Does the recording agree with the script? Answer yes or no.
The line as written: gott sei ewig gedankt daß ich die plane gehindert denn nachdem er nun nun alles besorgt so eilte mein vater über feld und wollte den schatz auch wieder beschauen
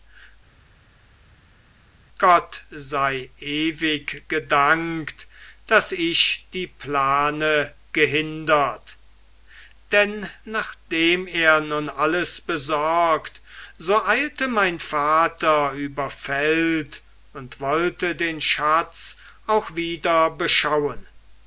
no